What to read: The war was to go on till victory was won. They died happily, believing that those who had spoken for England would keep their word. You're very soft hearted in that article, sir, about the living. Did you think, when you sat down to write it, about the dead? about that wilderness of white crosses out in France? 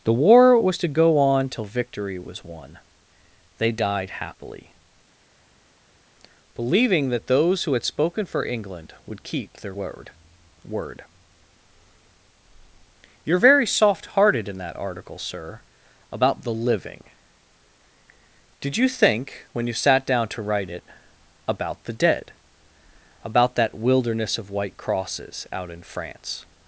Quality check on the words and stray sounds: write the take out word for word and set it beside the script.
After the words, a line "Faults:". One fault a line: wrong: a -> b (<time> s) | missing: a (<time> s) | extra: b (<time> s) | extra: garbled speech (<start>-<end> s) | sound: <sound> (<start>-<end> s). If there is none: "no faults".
The war was to go on till victory was won. They died happily, believing that those who had spoken for England would keep their word word. You're very soft hearted in that article, sir, about the living. Did you think, when you sat down to write it, about the dead? about that wilderness of white crosses out in France?
Faults:
extra: word (10.7 s)